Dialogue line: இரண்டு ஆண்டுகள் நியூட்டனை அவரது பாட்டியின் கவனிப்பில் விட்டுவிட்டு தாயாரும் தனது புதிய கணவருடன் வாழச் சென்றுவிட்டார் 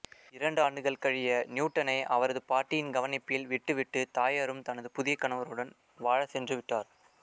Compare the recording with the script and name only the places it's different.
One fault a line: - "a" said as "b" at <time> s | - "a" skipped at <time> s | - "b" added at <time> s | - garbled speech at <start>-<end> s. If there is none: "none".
- "கழிய" added at 1.0 s